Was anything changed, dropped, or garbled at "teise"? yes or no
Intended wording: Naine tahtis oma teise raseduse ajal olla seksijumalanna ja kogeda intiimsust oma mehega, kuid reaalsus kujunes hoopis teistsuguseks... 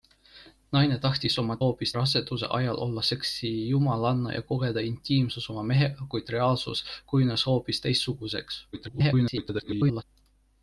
yes